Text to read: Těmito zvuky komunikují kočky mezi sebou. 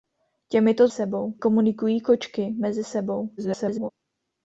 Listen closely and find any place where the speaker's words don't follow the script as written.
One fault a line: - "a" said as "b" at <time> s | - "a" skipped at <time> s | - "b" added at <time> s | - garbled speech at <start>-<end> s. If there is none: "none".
- "zvuky" said as "sebou" at 0.9 s
- garbled speech at 3.4-3.9 s